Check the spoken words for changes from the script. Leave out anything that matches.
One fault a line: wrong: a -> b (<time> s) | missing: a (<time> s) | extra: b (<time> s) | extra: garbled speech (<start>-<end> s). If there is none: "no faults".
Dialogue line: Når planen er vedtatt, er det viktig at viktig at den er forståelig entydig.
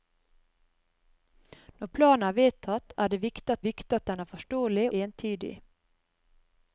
no faults